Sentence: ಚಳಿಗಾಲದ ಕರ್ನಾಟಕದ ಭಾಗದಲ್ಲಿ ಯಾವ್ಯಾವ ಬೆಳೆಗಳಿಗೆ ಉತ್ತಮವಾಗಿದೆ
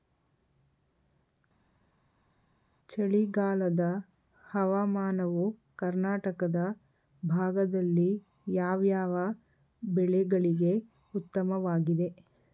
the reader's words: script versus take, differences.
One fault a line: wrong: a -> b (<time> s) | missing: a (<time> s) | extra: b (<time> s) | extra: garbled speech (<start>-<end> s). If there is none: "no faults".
extra: ಹವಾಮಾನವು (4.4 s)